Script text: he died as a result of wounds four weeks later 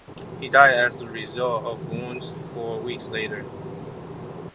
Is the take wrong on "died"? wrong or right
right